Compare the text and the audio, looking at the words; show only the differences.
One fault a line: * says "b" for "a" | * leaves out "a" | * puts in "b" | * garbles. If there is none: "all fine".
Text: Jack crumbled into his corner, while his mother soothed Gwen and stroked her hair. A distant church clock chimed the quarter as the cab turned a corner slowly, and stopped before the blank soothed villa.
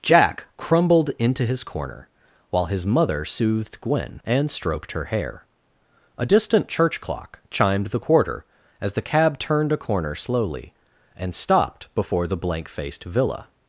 * says "faced" for "soothed"